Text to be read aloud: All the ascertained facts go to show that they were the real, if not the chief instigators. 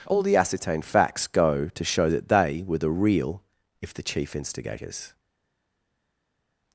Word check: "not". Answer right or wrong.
wrong